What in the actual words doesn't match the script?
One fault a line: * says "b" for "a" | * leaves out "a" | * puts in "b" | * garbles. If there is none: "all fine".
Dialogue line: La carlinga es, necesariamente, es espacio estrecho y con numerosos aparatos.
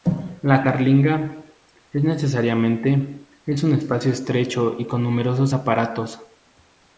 * puts in "un"